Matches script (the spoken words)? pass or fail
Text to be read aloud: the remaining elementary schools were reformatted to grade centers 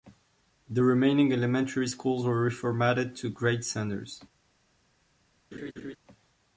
pass